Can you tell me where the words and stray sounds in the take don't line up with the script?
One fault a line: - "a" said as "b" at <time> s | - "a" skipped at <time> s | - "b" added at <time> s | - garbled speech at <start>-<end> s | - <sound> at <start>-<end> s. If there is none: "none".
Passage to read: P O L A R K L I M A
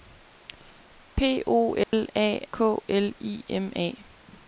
- dropout at 1.8-1.9 s
- "R" skipped at 2.5 s